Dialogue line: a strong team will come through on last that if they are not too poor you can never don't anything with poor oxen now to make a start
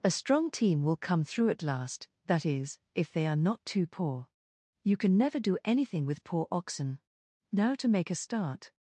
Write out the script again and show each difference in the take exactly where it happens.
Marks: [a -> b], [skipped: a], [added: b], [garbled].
a strong team will come through [on -> at] last that [added: is] if they are not too poor you can never [don't -> do] anything with poor oxen now to make a start